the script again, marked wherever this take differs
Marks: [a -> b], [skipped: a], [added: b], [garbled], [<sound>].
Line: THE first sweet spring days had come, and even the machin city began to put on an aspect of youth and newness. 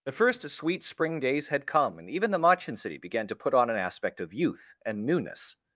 THE first sweet spring days had come, and even the machin city began to put on an aspect of youth and newness.